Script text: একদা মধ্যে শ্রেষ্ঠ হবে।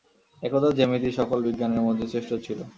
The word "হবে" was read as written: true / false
false